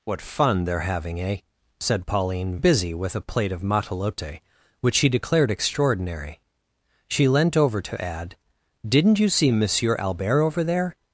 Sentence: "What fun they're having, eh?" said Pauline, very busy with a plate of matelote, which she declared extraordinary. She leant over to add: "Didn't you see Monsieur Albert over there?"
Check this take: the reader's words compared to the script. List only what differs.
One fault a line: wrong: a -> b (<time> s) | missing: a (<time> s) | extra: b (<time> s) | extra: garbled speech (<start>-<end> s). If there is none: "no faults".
missing: very (2.6 s)